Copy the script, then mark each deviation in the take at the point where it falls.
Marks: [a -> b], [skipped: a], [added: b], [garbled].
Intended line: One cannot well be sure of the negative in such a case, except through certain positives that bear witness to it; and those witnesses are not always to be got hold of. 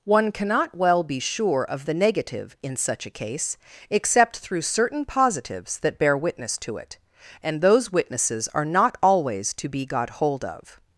One cannot well be sure of the negative in such a case, except through certain positives that bear witness to it; and those witnesses are not always to be got hold of.